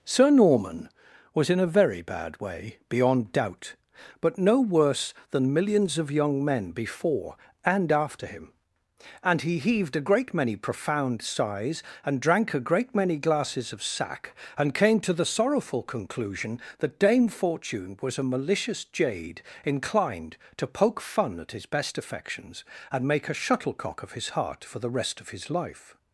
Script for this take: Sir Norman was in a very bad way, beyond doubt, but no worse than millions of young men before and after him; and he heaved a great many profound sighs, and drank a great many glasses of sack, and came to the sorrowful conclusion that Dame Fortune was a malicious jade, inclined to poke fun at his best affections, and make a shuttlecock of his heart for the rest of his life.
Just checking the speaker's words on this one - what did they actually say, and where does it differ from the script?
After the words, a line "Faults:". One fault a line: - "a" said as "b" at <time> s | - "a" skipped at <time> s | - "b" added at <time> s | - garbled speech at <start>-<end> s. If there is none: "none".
Sir Norman was in a very bad way, beyond doubt, but no worse than millions of young men before and after him; and he heaved a great many profound sighs, and drank a great many glasses of sack, and came to the sorrowful conclusion that Dame Fortune was a malicious jade, inclined to poke fun at his best affections, and make a shuttlecock of his heart for the rest of his life.
Faults:
none